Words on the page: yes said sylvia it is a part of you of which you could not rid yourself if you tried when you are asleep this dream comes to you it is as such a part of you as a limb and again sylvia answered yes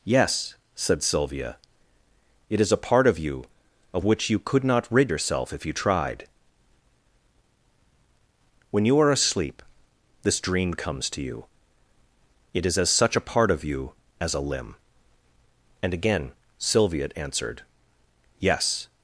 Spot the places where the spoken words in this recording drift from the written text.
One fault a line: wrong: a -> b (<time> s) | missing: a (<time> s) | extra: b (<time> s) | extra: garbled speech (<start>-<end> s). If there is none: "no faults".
no faults